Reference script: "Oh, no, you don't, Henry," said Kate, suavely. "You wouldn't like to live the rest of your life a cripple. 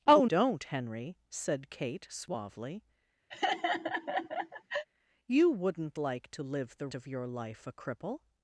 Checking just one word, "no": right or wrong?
wrong